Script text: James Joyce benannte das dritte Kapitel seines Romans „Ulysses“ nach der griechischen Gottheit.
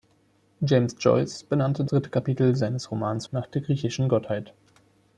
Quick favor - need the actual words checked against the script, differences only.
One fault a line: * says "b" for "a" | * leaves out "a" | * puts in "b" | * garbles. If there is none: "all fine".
* leaves out "das"
* leaves out "Ulysses"